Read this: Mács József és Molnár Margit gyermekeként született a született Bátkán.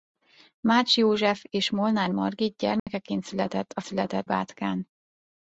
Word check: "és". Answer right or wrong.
right